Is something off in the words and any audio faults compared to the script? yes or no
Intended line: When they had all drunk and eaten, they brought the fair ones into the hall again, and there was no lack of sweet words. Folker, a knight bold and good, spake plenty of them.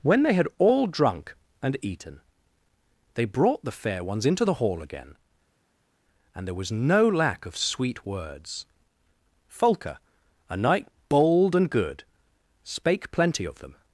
no